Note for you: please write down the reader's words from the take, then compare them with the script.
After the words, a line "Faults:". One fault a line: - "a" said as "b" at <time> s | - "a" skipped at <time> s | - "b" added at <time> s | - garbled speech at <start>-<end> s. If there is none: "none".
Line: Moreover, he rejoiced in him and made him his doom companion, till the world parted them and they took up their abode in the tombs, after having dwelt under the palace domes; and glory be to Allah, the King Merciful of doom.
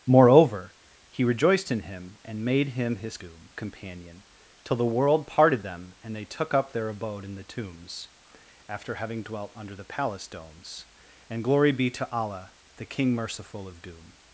Moreover, he rejoiced in him and made him his doom companion, till the world parted them and they took up their abode in the tombs, after having dwelt under the palace domes; and glory be to Allah, the King Merciful of doom.
Faults:
none